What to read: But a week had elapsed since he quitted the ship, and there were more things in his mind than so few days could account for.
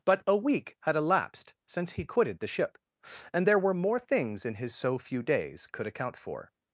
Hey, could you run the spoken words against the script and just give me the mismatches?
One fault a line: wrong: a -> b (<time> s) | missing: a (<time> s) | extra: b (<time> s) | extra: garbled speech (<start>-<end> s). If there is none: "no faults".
missing: mind than (4.7 s)